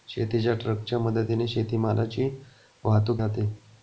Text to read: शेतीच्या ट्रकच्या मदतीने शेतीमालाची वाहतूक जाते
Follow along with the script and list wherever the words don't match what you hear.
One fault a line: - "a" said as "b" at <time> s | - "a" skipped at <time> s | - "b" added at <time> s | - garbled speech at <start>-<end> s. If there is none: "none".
none